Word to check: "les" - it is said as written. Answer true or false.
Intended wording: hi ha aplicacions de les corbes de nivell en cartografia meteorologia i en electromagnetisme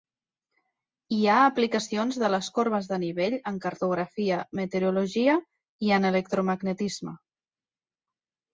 true